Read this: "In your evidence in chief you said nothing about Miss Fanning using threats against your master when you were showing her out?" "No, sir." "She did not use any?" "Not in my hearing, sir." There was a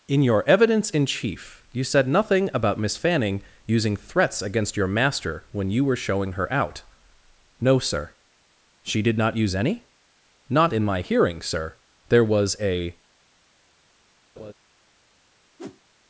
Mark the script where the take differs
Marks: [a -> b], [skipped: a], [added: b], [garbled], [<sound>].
"In your evidence in chief you said nothing about Miss Fanning using threats against your master when you were showing her out?" "No, sir." "She did not use any?" "Not in my hearing, sir." There was a [laugh] [whoosh]